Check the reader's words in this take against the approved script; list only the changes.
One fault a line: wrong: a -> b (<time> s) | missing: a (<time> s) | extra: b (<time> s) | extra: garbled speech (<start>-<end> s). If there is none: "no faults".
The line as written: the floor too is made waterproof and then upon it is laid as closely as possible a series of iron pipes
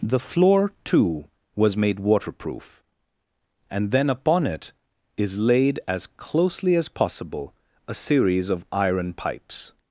wrong: is -> was (1.6 s)